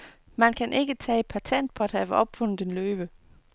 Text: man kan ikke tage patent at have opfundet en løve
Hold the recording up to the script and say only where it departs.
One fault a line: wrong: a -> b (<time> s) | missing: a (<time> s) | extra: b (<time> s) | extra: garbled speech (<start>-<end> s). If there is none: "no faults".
extra: på (1.7 s)